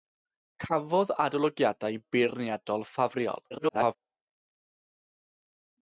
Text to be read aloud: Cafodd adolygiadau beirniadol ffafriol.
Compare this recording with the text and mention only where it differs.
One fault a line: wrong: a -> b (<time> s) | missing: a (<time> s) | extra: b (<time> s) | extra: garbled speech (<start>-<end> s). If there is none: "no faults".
extra: garbled speech (3.5-4.0 s)